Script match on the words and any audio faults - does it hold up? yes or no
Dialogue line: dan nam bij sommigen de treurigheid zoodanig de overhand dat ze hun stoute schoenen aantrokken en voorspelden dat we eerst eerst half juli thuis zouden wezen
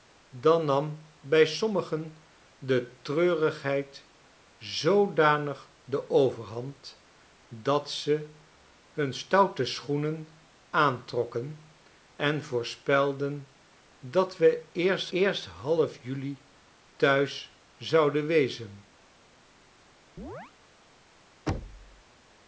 no